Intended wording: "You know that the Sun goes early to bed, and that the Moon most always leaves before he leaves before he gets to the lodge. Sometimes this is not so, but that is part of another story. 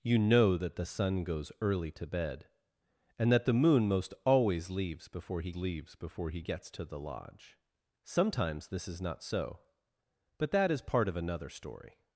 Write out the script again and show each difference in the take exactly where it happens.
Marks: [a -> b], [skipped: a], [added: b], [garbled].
"You know that the Sun goes early to bed, and that the Moon most always leaves before he leaves before he gets to the lodge. Sometimes this is not so, but that is part of another story.